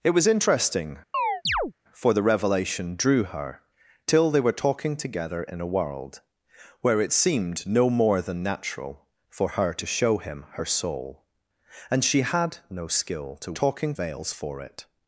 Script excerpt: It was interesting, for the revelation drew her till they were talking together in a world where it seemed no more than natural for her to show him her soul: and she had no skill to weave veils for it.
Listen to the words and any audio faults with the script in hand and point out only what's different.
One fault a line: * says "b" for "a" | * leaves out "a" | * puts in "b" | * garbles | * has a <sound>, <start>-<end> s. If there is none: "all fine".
* has a chirp, 1.1-1.7 s
* says "talking" for "weave"